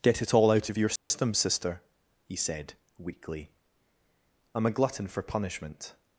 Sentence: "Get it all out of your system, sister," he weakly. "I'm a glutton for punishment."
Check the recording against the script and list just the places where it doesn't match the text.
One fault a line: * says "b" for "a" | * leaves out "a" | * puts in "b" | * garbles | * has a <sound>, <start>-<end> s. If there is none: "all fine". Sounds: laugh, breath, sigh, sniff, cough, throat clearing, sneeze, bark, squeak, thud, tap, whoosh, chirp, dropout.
* has a dropout, 1.0-1.1 s
* puts in "said"